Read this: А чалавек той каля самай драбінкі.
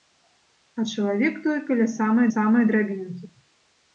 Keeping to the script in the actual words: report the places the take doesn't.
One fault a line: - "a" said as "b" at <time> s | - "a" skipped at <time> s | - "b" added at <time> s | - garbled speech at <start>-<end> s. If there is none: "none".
- "самай" added at 2.3 s